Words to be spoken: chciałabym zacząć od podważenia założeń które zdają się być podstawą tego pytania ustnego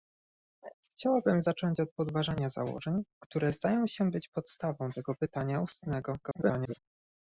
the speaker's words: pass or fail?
fail